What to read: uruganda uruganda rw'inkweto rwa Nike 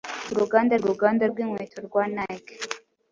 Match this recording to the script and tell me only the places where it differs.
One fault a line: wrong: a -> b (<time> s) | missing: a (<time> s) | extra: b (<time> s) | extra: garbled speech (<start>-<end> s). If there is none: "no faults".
no faults